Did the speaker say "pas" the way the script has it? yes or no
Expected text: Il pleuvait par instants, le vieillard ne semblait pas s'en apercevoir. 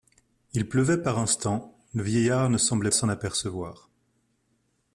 no